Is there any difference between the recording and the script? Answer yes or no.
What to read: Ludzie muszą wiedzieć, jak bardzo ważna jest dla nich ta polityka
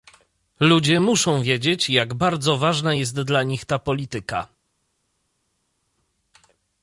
no